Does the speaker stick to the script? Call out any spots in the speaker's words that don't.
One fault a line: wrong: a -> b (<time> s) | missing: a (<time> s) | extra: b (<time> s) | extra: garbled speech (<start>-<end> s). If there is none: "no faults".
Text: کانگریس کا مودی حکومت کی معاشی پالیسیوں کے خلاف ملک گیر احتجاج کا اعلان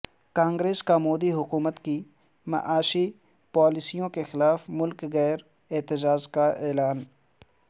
no faults